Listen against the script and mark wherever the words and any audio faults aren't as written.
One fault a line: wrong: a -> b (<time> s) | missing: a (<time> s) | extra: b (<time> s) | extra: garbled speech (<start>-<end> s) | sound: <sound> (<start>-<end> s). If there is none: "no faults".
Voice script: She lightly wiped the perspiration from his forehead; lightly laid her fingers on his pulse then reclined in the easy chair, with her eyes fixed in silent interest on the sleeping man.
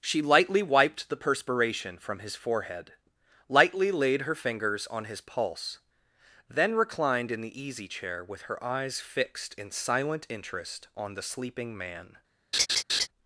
sound: laugh (12.5-13.1 s)